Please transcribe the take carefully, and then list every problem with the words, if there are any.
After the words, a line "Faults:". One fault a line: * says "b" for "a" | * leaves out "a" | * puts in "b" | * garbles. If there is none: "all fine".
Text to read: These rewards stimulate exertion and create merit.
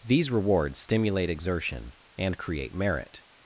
These rewards stimulate exertion and create merit.
Faults:
all fine